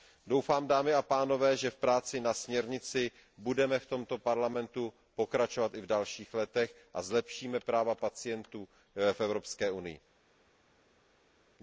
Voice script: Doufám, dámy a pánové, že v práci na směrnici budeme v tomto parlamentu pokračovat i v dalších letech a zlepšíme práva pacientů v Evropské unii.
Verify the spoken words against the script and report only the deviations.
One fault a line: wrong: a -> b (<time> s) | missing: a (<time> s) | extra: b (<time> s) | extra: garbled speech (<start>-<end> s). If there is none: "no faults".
no faults